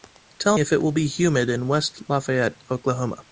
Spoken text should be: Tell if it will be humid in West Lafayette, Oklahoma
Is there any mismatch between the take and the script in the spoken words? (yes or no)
no